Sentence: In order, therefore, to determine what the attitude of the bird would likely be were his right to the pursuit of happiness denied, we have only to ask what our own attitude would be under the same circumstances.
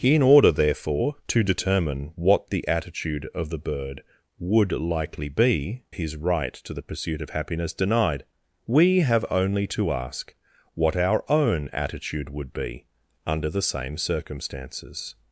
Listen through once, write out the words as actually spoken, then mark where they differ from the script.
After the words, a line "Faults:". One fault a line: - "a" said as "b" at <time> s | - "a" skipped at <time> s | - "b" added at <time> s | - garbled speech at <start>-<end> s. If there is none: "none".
In order, therefore, to determine what the attitude of the bird would likely be his right to the pursuit of happiness denied, we have only to ask what our own attitude would be under the same circumstances.
Faults:
- "were" skipped at 5.8 s